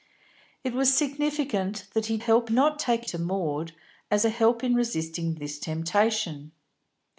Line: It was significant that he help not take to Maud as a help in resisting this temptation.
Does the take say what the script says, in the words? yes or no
yes